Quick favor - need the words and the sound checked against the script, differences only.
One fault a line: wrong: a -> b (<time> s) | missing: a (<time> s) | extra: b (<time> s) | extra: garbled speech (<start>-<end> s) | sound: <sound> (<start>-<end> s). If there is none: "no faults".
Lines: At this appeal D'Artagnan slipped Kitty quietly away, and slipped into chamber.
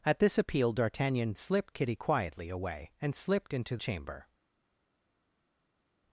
no faults